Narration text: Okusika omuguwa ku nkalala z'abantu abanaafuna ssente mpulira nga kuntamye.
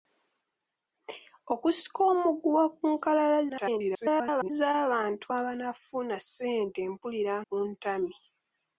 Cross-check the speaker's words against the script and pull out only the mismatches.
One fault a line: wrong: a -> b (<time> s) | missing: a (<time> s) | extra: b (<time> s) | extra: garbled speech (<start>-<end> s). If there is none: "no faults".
extra: garbled speech (3.5-4.5 s)
missing: nga (7.3 s)